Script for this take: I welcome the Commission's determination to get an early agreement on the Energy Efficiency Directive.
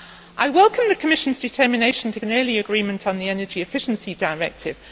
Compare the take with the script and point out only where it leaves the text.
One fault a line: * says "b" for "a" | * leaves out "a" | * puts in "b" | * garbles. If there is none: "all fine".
* leaves out "get"